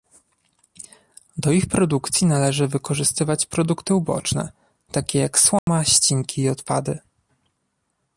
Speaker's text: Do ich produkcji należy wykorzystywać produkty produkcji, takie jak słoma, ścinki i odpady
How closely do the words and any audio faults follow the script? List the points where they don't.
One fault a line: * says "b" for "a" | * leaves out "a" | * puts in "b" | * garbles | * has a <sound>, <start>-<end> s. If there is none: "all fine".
* says "uboczne" for "produkcji"
* has a dropout, 5.6-5.7 s